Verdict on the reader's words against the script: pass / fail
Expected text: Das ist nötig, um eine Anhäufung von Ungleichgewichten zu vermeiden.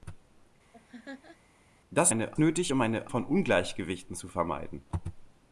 fail